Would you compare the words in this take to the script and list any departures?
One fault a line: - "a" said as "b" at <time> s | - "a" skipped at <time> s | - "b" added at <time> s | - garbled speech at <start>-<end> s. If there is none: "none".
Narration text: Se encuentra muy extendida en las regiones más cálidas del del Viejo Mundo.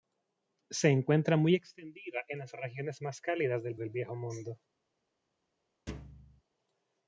none